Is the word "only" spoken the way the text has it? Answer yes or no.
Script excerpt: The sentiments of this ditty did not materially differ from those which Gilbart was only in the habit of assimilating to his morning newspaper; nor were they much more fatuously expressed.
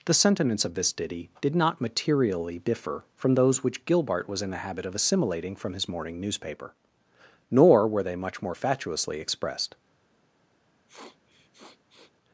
no